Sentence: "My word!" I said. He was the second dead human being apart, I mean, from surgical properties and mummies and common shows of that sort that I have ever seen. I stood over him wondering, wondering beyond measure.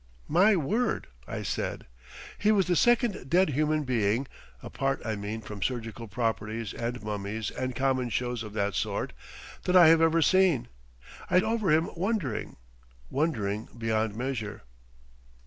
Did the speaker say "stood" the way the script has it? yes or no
no